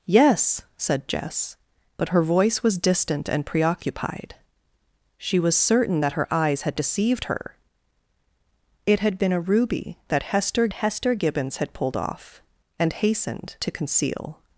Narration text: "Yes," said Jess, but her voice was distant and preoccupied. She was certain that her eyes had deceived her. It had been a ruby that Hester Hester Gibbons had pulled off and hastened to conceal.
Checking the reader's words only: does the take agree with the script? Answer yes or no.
yes